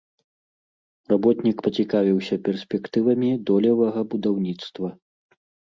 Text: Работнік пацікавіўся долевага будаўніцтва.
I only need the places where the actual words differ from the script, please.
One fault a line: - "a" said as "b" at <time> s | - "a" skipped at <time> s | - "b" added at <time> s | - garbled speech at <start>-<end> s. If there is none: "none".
- "перспектывамі" added at 2.5 s